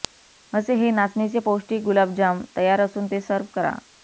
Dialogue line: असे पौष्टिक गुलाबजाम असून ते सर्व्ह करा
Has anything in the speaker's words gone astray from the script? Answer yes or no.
yes